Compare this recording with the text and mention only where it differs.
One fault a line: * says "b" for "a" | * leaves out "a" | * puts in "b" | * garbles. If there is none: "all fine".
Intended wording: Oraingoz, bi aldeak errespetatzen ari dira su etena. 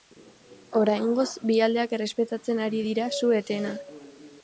all fine